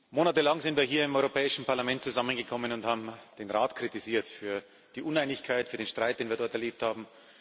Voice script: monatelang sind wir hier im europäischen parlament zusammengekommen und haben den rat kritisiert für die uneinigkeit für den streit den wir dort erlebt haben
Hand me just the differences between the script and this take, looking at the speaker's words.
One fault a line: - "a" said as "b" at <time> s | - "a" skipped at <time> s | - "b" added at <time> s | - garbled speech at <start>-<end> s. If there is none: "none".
none